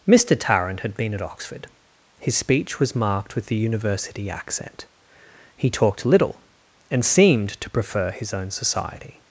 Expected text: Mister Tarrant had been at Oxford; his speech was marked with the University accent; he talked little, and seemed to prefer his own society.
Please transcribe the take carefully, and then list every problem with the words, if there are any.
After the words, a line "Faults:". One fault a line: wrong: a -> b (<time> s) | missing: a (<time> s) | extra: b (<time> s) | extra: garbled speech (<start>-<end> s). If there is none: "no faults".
Mister Tarrant had been at Oxford; his speech was marked with the University accent; he talked little, and seemed to prefer his own society.
Faults:
no faults